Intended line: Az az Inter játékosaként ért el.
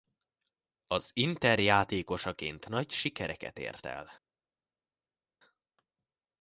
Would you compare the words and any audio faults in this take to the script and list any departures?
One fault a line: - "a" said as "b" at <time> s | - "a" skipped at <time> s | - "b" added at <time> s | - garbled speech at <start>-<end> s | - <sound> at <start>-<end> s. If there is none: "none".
- "az" skipped at 1.1 s
- "nagy sikereket" added at 2.7 s